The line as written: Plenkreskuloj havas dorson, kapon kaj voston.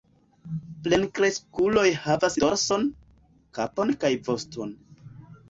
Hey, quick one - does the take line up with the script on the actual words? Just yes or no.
yes